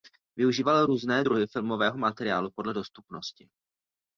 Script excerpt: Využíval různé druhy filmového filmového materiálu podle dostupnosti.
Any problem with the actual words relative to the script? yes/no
yes